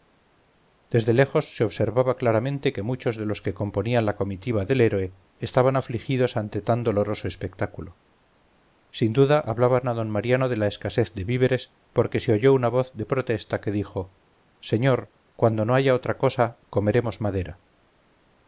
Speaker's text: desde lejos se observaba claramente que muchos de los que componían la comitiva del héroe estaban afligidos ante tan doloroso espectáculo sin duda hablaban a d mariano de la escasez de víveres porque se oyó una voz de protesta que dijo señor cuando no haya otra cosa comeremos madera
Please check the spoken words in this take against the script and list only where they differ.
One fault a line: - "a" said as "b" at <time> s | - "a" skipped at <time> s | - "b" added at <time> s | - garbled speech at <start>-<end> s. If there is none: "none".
none